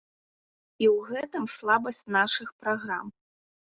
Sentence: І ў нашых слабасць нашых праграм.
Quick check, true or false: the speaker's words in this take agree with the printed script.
false